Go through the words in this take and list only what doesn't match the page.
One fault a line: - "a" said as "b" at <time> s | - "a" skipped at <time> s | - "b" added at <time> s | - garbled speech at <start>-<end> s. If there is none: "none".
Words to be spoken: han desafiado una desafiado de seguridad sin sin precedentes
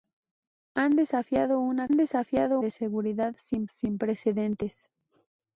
none